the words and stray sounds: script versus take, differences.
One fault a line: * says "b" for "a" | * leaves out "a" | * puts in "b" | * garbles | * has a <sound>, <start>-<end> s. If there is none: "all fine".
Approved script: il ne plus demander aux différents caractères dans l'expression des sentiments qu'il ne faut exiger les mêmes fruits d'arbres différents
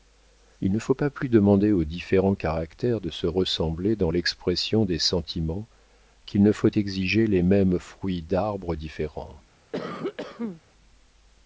* puts in "faut pas"
* puts in "de se ressembler"
* has a cough, 9.7-10.6 s